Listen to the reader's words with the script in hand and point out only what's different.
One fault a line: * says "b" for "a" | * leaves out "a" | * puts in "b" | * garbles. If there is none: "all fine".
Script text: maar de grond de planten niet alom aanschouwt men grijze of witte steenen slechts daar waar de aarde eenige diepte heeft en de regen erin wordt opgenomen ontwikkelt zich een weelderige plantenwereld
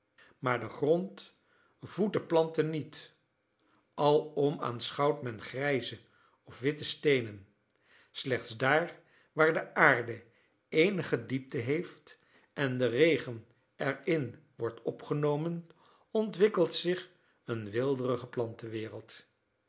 * puts in "voedt"